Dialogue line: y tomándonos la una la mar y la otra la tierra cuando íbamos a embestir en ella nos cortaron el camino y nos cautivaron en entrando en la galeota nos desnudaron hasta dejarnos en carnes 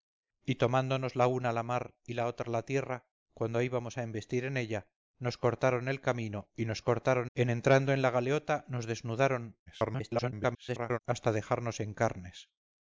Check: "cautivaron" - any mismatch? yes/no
yes